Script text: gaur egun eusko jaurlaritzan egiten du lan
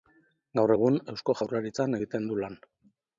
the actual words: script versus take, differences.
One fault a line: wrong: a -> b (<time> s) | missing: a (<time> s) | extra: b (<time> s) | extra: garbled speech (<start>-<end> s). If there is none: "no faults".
no faults